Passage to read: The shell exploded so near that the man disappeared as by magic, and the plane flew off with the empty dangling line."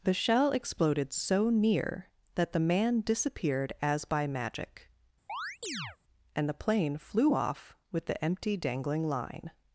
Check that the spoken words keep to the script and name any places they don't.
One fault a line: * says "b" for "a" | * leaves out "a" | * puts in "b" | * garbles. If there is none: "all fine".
all fine